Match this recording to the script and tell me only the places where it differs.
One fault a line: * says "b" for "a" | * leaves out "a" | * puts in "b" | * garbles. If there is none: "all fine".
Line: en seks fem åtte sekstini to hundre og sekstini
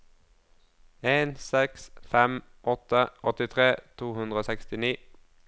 * says "åttitre" for "sekstini"